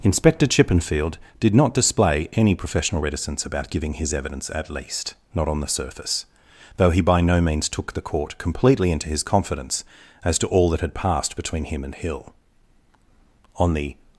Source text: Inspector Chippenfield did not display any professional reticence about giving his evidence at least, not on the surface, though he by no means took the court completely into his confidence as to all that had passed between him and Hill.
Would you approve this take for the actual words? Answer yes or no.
no